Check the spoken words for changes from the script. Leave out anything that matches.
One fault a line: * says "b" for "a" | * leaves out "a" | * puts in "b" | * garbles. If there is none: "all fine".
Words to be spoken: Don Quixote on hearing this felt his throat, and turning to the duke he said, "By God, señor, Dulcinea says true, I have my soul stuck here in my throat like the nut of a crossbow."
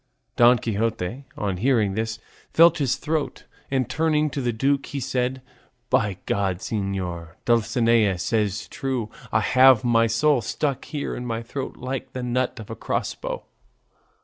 all fine